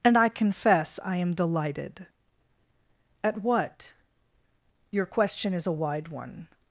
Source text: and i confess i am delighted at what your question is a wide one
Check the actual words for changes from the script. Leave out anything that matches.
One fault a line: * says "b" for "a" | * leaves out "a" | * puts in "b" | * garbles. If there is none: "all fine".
all fine